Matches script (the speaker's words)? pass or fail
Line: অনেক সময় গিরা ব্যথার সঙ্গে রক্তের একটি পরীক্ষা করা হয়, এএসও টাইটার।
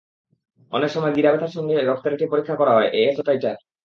pass